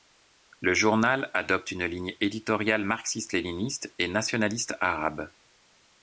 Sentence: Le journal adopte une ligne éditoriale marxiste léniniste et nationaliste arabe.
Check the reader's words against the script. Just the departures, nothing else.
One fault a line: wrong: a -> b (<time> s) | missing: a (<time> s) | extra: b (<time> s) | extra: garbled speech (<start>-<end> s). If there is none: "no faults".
no faults